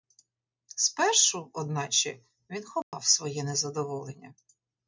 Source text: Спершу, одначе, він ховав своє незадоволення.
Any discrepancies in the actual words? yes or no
no